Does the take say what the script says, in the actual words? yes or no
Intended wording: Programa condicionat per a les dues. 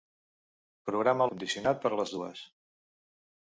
yes